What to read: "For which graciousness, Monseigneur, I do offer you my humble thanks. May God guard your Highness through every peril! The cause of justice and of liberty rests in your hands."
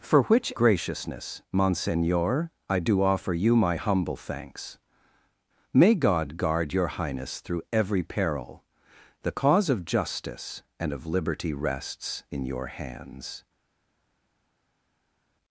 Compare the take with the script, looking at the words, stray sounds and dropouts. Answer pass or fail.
pass